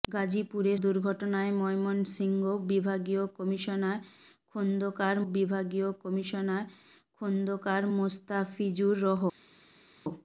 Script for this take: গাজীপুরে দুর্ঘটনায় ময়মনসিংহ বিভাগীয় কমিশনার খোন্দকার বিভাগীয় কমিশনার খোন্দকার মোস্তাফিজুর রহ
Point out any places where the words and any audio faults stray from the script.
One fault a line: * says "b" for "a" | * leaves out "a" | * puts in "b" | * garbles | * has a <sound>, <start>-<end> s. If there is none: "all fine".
all fine